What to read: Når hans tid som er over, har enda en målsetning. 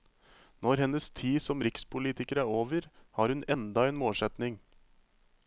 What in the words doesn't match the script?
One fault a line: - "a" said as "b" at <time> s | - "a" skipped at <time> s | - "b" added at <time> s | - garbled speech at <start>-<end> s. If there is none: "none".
- "hans" said as "hennes" at 0.8 s
- "rikspolitiker" added at 1.7 s
- "hun" added at 3.3 s